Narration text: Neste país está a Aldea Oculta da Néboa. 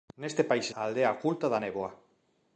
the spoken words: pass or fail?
fail